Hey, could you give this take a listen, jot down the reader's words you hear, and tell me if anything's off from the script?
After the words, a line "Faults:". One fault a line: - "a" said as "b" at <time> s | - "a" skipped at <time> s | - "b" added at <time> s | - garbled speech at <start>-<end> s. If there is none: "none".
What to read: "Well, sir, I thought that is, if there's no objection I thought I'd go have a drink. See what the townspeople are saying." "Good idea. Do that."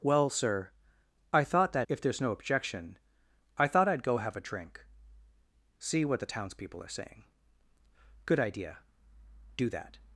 "Well, sir, I thought that if there's no objection I thought I'd go have a drink. See what the townspeople are saying." "Good idea. Do that."
Faults:
- "is" skipped at 1.9 s